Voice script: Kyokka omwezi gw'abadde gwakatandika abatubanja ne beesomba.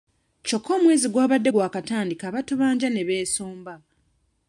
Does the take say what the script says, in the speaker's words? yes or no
yes